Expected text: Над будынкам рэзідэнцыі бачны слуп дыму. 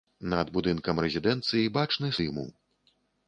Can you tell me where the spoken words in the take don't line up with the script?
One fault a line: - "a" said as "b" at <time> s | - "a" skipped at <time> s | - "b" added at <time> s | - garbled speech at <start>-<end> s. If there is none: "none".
- "слуп" skipped at 2.1 s